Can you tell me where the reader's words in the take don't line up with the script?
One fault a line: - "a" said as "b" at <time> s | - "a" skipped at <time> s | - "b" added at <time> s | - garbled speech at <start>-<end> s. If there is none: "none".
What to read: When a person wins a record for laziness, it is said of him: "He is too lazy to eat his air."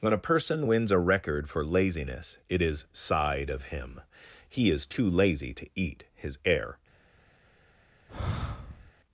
- "said" said as "sighed" at 2.9 s